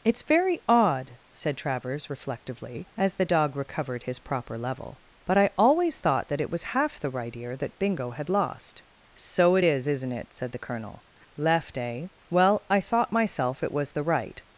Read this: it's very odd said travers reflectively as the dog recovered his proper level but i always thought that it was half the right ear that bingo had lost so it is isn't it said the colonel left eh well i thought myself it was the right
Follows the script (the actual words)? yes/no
yes